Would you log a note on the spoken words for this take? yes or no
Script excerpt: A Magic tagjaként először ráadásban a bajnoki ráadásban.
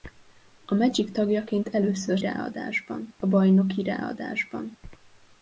no